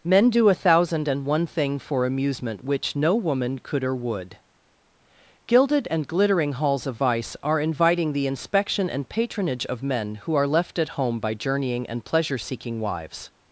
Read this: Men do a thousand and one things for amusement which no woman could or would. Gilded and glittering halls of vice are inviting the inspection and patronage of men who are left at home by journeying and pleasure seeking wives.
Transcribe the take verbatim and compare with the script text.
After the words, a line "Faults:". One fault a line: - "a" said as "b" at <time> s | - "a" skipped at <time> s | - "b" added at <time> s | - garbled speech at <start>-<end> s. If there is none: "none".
Men do a thousand and one thing for amusement which no woman could or would. Gilded and glittering halls of vice are inviting the inspection and patronage of men who are left at home by journeying and pleasure seeking wives.
Faults:
- "things" said as "thing" at 1.4 s